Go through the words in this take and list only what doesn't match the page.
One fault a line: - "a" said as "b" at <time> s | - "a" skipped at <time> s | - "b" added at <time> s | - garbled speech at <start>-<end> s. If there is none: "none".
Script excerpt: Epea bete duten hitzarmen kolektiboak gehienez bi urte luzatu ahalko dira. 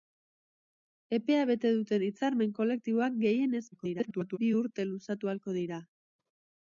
- garbled speech at 3.7-4.4 s